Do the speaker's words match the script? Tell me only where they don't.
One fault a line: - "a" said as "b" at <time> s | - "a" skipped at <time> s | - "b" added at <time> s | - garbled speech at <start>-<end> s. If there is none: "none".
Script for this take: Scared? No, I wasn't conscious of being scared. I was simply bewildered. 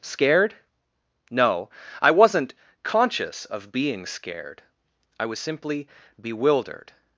none